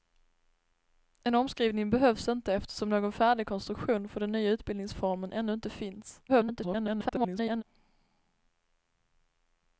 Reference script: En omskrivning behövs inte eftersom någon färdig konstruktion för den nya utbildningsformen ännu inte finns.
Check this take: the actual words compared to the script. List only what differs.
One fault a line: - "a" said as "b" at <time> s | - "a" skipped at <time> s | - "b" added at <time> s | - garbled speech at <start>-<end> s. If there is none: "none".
- garbled speech at 6.3-7.6 s